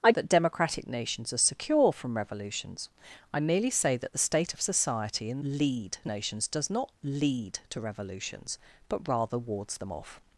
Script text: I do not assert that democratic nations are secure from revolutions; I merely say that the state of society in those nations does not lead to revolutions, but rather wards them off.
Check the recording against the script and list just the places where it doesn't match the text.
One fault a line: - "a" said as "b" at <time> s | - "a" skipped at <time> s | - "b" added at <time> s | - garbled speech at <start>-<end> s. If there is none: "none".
- "do not assert" skipped at 0.1 s
- "those" said as "lead" at 5.4 s